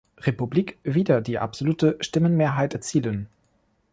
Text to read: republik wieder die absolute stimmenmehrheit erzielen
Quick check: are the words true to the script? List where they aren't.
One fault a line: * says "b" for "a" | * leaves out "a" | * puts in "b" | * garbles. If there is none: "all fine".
all fine